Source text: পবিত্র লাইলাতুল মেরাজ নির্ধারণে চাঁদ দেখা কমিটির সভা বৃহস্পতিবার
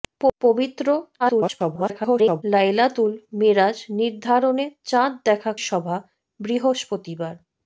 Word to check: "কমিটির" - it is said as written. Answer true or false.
false